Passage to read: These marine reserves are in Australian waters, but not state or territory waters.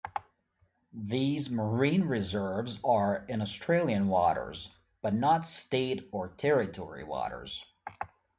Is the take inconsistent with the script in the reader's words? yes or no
no